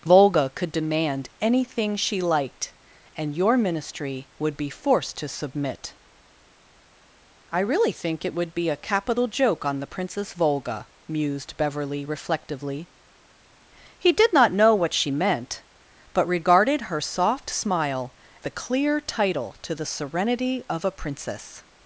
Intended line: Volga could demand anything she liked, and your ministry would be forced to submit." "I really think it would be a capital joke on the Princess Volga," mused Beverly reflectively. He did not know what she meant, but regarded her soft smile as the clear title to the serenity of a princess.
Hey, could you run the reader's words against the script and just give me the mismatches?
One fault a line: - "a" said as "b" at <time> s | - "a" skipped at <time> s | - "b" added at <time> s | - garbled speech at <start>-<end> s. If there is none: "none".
- "as" skipped at 18.1 s